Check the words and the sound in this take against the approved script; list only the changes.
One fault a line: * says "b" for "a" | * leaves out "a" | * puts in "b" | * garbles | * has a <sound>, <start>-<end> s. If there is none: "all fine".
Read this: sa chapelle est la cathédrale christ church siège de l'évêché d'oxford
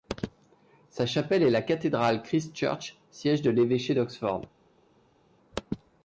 all fine